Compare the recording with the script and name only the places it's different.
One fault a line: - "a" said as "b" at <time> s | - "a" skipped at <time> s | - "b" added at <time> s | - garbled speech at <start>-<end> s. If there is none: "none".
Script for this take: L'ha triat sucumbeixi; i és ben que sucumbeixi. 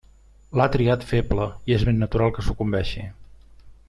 - "sucumbeixi" said as "feble" at 1.1 s
- "natural" added at 2.1 s